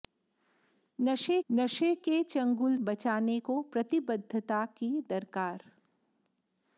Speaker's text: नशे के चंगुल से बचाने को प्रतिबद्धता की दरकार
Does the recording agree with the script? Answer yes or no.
no